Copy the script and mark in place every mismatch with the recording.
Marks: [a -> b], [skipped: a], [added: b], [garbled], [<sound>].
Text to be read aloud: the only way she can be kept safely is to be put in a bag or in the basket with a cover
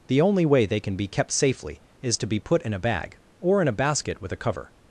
the only way [she -> they] can be kept safely is to be put in a bag or in [the -> a] basket with a cover